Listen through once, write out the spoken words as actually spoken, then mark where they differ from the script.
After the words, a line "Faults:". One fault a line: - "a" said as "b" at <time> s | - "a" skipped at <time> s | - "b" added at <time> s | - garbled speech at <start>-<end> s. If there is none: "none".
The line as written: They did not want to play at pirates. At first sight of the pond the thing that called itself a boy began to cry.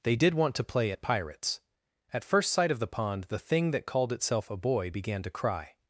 They did want to play at pirates. At first sight of the pond the thing that called itself a boy began to cry.
Faults:
- "not" skipped at 0.3 s